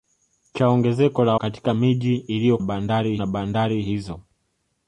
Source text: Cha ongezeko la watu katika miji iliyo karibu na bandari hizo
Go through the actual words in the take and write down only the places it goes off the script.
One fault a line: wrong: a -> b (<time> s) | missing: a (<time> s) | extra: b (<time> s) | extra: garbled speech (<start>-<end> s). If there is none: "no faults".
missing: watu (1.4 s)
wrong: karibu -> bandari (2.6 s)